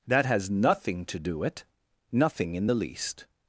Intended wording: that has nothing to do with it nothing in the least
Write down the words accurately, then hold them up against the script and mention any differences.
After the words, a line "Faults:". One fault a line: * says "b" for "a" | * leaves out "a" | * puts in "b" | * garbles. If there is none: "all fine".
that has nothing to do it nothing in the least
Faults:
* leaves out "with"